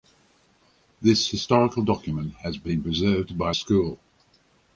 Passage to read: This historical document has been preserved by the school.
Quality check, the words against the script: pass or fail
fail